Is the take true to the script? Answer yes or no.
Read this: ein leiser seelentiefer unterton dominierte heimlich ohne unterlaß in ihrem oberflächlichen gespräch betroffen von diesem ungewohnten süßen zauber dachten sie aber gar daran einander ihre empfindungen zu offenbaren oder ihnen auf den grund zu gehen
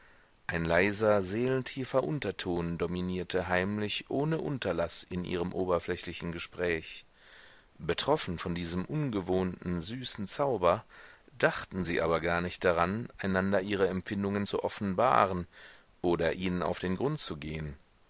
no